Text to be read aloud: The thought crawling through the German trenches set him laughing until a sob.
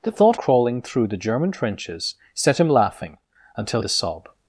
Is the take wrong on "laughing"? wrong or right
right